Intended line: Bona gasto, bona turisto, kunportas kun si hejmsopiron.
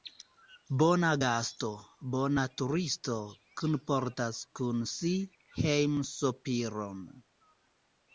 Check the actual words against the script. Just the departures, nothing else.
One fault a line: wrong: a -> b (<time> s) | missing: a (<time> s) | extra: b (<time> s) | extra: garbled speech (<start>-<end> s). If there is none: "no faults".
no faults